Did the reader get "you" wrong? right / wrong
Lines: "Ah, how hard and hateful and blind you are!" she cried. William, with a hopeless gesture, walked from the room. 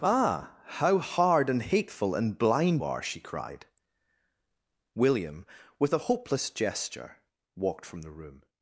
wrong